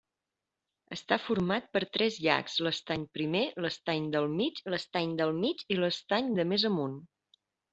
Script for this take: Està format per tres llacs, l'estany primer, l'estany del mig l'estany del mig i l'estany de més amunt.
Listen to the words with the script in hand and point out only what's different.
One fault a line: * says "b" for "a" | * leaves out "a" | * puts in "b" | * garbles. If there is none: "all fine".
all fine